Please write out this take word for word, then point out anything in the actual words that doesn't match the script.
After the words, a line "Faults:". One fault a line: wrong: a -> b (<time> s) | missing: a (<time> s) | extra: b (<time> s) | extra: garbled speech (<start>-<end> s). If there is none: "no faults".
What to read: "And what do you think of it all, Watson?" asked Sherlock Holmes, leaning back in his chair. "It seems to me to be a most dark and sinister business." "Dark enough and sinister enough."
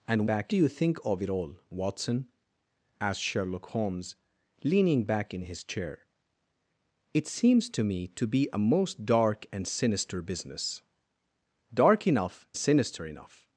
"And back do you think of it all, Watson?" asked Sherlock Holmes, leaning back in his chair. "It seems to me to be a most dark and sinister business." "Dark enough sinister enough."
Faults:
wrong: what -> back (0.2 s)
missing: and (12.5 s)